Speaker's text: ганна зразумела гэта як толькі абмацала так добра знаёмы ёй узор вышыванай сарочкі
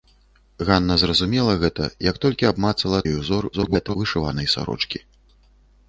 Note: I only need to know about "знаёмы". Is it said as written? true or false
false